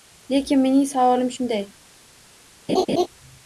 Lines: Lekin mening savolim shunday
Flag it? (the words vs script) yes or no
no